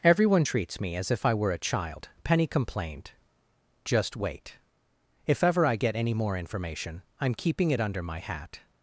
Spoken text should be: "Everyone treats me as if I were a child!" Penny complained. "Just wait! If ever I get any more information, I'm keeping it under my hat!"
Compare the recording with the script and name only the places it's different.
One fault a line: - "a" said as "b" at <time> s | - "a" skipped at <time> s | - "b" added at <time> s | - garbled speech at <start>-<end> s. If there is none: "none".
none